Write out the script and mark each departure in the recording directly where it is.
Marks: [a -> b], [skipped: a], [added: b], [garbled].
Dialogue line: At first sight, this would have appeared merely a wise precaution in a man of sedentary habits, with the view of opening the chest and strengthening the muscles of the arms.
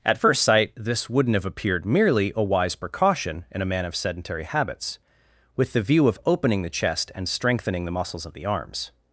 At first sight, this [would -> wouldn't] have appeared merely a wise precaution in a man of sedentary habits, with the view of opening the chest and strengthening the muscles of the arms.